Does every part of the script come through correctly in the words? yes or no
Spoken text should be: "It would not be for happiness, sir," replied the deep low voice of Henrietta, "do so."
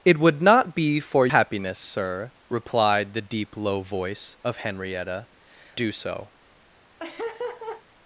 yes